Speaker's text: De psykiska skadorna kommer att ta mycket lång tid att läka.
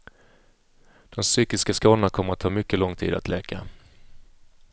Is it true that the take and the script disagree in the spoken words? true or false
false